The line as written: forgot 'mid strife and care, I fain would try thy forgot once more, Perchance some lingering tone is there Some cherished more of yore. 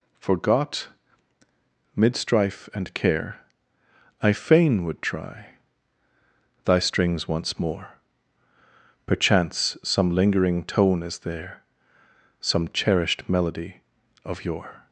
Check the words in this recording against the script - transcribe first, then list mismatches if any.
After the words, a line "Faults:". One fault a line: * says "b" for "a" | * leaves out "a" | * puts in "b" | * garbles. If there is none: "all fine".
forgot 'mid strife and care, I fain would try thy strings once more, Perchance some lingering tone is there Some cherished melody of yore.
Faults:
* says "strings" for "forgot"
* says "melody" for "more"